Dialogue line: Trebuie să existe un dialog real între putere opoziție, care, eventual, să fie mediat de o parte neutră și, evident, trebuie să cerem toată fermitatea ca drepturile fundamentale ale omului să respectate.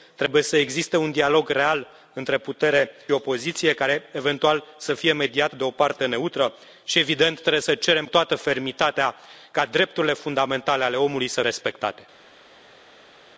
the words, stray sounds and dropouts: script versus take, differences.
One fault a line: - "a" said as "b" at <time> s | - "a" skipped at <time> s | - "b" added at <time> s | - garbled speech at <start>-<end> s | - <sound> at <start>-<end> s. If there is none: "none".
none